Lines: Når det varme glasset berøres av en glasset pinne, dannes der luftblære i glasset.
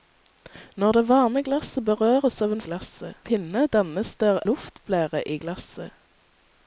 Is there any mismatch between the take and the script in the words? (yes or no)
no